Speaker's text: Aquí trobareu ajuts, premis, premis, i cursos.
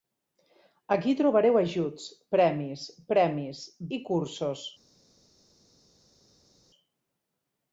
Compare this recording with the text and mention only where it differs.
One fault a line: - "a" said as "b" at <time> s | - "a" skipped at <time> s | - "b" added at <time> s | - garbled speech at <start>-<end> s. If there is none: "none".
none